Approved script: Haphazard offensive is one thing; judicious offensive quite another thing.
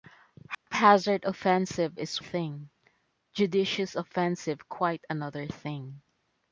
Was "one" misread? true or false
true